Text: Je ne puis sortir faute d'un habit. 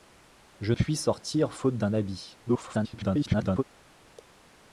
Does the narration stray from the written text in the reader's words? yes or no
yes